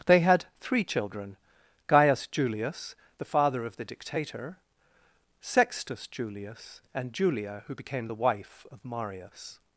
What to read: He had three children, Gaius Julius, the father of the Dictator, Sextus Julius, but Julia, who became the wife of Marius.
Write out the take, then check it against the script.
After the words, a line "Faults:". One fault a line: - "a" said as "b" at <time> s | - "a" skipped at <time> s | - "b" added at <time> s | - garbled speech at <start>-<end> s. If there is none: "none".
They had three children, Gaius Julius, the father of the Dictator, Sextus Julius, and Julia, who became the wife of Marius.
Faults:
- "He" said as "They" at 0.1 s
- "but" said as "and" at 6.9 s